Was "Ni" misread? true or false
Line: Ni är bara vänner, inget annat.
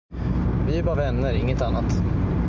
true